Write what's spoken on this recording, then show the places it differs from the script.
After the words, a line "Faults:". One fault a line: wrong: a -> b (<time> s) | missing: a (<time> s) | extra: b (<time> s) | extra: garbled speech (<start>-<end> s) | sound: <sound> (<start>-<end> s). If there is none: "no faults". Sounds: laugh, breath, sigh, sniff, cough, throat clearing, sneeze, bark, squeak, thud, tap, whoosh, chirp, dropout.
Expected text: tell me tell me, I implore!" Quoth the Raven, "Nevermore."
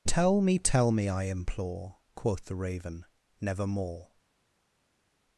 tell me tell me, I implore!" Quoth the Raven, "Nevermore."
Faults:
no faults